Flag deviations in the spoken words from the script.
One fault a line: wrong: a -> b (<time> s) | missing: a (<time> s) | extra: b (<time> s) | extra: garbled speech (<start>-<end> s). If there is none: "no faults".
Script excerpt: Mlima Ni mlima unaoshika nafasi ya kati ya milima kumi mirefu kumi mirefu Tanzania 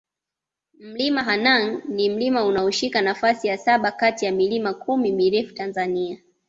extra: Hanang (1.2 s)
extra: saba (3.6 s)
missing: kumi mirefu (5.5 s)